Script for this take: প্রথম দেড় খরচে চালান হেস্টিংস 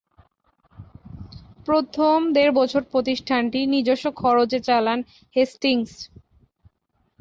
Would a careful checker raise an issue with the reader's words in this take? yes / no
yes